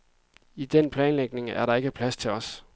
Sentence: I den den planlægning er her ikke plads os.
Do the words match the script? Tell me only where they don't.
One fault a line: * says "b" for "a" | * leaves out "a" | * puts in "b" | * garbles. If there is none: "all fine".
* leaves out "den"
* says "der" for "her"
* puts in "til"